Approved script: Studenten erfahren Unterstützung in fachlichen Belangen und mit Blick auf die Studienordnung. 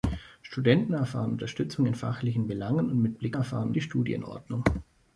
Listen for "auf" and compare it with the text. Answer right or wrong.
wrong